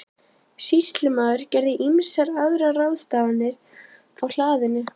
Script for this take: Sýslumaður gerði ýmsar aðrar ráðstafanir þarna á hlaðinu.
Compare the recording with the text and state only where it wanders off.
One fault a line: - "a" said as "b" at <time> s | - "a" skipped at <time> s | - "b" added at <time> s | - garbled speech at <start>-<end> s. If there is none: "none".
- "þarna" skipped at 3.5 s